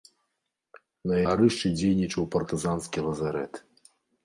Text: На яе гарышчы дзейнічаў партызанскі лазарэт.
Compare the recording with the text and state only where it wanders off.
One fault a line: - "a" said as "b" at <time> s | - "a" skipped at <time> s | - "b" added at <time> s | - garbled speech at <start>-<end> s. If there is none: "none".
- "яе" skipped at 1.2 s